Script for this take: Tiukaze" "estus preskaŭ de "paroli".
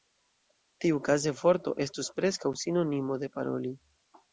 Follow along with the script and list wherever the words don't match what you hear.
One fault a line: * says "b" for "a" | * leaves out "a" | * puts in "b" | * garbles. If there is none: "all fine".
* puts in "vorto"
* puts in "sinonimo"